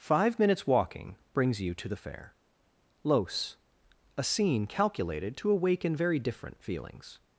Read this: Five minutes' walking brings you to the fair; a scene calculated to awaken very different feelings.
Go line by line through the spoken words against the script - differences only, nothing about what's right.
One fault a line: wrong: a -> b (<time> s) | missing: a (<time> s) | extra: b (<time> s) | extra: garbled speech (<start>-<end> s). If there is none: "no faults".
extra: los (3.0 s)